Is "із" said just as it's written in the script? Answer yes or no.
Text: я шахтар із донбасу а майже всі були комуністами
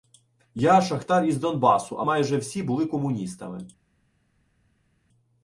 yes